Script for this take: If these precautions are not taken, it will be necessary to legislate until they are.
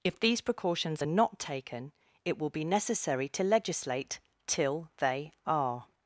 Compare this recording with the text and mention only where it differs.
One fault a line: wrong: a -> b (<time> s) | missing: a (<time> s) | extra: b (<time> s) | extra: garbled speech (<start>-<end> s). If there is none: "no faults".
wrong: until -> till (4.4 s)